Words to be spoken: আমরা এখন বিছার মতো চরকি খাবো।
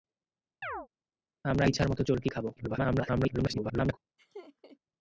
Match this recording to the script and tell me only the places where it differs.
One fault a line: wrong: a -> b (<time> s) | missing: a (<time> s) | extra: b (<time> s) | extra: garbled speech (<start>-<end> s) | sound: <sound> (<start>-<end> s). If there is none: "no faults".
sound: chirp (0.6-0.9 s)
missing: এখন (1.6 s)
extra: garbled speech (2.6-4.0 s)
sound: laugh (4.2-4.8 s)